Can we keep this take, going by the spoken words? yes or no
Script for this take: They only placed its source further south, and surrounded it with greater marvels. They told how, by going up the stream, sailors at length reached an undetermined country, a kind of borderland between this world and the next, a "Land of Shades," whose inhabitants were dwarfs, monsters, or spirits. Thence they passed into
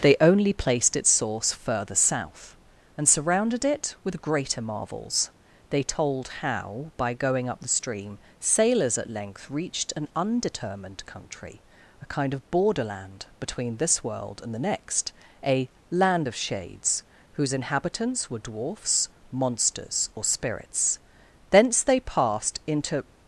yes